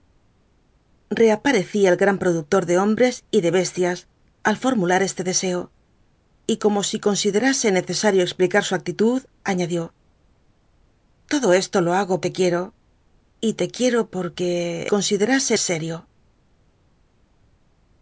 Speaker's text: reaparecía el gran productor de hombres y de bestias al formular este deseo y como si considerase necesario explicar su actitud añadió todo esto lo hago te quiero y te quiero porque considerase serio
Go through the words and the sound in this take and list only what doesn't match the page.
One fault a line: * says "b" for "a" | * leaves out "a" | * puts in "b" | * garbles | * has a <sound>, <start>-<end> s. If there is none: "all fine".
all fine